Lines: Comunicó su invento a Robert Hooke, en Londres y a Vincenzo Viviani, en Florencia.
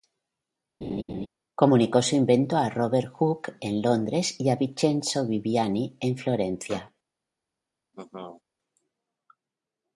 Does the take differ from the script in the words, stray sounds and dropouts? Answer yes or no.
yes